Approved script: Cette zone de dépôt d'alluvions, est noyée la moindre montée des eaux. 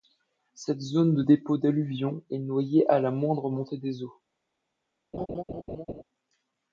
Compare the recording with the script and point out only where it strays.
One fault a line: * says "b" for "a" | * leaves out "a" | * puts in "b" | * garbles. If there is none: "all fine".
* puts in "à"